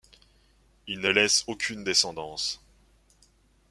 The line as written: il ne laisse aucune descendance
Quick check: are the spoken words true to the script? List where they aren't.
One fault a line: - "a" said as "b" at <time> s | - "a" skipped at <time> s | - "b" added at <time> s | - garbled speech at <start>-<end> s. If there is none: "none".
none